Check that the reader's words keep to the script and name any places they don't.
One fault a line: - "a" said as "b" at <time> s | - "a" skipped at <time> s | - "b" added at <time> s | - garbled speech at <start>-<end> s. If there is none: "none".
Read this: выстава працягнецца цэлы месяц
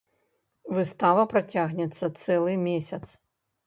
none